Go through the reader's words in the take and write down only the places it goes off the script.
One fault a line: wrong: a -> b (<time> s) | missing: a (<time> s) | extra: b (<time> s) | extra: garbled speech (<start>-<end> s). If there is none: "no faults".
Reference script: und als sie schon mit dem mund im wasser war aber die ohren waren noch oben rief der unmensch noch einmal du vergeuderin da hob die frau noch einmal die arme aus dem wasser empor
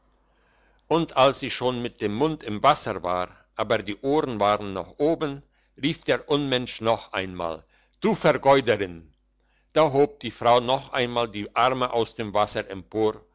no faults